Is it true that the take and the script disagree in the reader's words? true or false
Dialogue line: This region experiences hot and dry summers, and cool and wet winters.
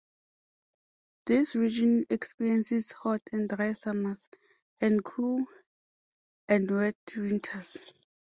false